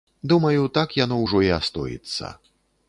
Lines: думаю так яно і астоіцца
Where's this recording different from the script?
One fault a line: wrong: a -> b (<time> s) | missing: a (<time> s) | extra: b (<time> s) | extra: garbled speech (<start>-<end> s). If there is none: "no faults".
extra: ўжо (1.2 s)